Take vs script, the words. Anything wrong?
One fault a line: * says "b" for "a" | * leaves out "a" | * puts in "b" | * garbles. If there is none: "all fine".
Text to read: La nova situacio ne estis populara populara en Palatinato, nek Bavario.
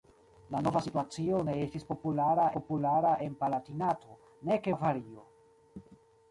all fine